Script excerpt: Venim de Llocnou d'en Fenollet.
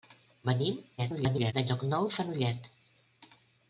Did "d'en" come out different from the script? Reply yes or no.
yes